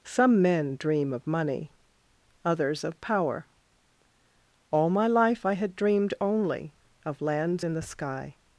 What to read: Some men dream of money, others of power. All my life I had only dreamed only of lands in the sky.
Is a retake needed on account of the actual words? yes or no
yes